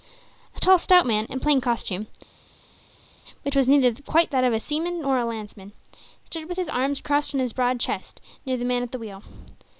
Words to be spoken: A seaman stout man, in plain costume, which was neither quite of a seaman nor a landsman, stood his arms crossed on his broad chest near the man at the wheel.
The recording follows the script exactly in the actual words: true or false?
false